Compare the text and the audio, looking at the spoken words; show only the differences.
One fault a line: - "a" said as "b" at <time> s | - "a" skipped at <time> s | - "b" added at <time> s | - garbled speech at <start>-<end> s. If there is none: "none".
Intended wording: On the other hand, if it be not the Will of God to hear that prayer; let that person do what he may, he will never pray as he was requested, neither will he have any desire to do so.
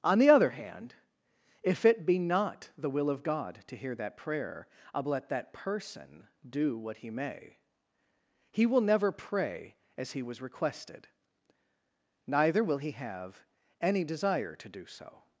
none